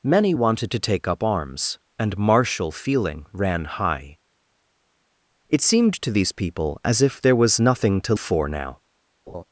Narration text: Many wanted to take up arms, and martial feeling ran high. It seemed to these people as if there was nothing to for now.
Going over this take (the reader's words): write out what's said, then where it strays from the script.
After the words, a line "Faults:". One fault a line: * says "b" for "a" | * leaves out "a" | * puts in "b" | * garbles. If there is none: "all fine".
Many wanted to take up arms, and martial feeling ran high. It seemed to these people as if there was nothing to for now.
Faults:
all fine